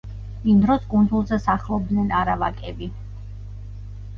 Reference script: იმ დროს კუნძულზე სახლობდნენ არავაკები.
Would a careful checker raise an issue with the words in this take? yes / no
no